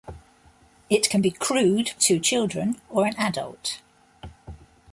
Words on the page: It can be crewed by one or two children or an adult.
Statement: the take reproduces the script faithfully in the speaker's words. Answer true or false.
false